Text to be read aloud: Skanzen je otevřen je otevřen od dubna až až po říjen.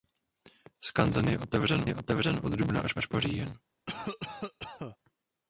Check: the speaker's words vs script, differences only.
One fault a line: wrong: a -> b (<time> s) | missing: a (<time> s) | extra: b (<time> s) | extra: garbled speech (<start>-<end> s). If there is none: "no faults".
no faults